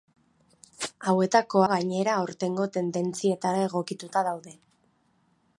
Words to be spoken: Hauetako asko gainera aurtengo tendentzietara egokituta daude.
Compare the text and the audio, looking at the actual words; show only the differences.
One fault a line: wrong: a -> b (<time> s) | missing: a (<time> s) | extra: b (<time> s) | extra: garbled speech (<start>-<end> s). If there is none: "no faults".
missing: asko (1.6 s)